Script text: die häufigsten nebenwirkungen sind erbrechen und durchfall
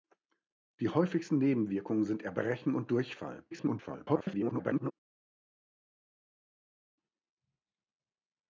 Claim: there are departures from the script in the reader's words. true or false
true